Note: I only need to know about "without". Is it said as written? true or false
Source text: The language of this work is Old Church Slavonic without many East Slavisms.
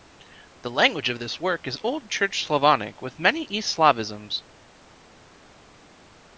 false